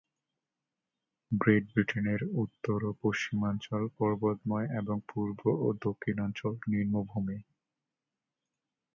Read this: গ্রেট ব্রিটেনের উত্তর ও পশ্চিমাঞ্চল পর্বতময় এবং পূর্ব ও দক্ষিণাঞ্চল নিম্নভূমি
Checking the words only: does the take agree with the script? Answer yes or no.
yes